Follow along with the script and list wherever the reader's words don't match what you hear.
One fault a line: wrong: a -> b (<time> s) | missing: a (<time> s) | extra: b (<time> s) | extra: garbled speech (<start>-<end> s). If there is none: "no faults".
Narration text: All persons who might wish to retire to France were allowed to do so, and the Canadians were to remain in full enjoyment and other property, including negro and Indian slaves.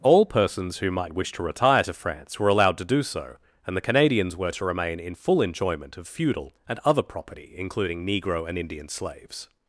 extra: of feudal (6.0 s)